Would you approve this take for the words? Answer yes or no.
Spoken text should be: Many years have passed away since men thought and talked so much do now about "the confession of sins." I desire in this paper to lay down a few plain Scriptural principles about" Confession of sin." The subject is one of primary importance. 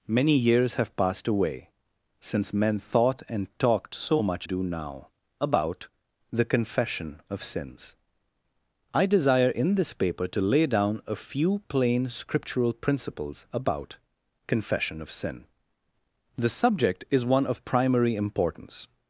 yes